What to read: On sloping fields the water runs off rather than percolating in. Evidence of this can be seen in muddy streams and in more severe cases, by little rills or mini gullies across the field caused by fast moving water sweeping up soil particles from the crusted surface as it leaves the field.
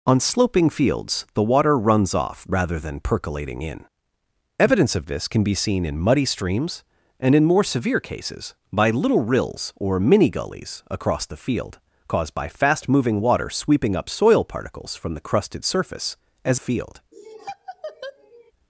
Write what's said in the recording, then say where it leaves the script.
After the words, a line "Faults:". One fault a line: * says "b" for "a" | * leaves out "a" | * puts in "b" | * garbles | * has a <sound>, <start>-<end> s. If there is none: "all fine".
On sloping fields the water runs off rather than percolating in. Evidence of this can be seen in muddy streams and in more severe cases, by little rills or mini gullies across the field caused by fast moving water sweeping up soil particles from the crusted surface as field.
Faults:
* leaves out "it leaves the"
* has a laugh, 17.1-18.5 s